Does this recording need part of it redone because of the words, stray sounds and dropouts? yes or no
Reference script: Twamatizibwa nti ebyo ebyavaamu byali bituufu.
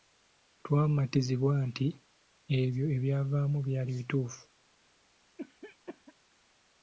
yes